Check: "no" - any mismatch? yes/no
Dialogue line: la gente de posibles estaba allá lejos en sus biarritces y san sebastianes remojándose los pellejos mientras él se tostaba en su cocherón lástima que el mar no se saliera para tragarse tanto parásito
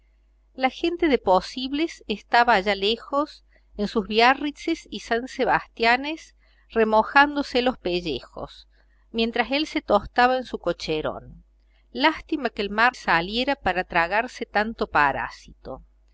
yes